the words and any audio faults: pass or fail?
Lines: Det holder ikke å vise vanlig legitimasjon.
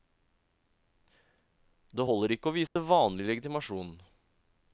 fail